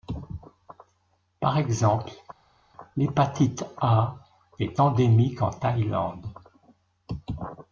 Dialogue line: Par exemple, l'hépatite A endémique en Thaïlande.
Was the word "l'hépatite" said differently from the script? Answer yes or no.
no